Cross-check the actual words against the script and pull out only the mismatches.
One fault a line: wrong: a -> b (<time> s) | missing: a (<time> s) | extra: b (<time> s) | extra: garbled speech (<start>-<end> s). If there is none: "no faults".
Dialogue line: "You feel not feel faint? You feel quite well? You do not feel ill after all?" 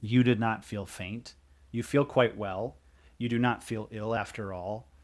wrong: feel -> did (0.2 s)